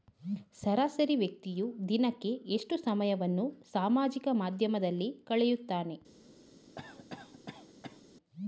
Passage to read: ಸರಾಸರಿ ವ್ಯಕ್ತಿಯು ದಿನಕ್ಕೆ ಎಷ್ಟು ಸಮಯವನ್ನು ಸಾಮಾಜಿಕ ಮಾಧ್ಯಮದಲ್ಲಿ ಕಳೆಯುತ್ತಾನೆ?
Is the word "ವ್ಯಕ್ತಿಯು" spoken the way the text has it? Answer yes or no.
yes